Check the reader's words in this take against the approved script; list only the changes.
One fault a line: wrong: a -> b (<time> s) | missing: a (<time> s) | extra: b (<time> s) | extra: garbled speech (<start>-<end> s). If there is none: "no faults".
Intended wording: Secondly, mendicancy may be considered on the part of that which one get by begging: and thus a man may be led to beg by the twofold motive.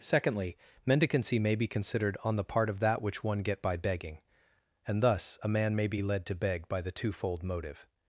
no faults